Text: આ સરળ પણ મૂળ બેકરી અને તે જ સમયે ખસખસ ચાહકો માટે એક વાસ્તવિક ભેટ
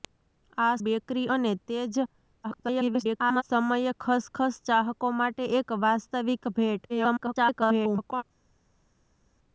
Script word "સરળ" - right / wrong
wrong